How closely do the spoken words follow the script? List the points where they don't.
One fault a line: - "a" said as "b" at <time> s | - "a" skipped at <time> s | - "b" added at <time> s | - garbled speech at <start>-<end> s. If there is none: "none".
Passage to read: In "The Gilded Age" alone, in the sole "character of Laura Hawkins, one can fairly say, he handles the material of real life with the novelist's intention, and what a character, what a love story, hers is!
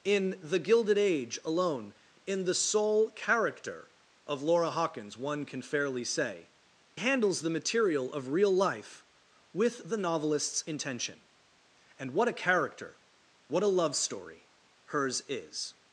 - "he" skipped at 6.5 s